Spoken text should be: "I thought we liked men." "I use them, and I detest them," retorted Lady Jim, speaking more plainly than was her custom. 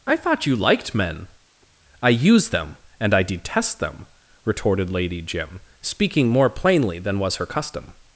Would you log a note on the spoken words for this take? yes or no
yes